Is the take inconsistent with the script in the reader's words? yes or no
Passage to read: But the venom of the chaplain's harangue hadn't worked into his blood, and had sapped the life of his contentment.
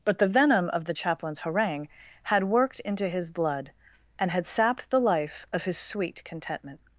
yes